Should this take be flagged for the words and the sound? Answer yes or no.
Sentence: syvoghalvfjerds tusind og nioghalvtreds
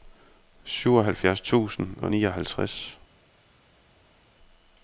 no